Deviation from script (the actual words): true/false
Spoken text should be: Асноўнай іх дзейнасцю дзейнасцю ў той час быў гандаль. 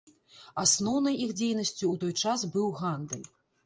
true